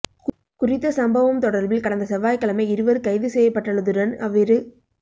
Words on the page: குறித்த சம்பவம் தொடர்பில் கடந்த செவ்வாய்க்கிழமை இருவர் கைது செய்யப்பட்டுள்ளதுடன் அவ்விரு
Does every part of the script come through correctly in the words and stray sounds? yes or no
yes